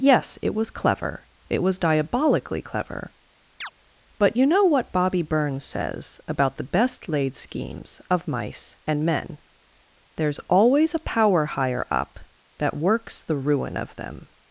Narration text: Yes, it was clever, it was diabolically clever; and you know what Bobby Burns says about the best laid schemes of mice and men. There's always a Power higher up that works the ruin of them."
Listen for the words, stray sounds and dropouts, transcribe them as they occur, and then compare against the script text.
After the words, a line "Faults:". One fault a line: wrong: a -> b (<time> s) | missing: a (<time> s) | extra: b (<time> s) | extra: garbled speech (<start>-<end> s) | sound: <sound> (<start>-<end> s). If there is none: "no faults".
Yes, it was clever, it was diabolically clever; but you know what Bobby Burns says about the best laid schemes of mice and men. There's always a Power higher up that works the ruin of them."
Faults:
sound: chirp (3.6-3.7 s)
wrong: and -> but (4.2 s)